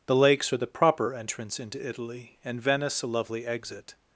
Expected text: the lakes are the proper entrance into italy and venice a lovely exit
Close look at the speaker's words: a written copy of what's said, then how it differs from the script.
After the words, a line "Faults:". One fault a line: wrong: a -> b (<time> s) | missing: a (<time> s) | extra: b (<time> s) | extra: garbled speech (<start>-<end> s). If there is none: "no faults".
the lakes are the proper entrance into italy and venice a lovely exit
Faults:
no faults